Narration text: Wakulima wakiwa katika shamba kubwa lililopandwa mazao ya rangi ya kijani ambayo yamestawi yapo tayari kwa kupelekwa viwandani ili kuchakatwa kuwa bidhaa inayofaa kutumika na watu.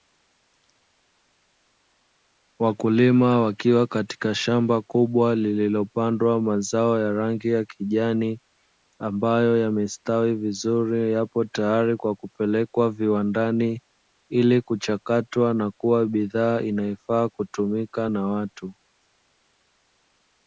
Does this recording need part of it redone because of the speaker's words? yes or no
yes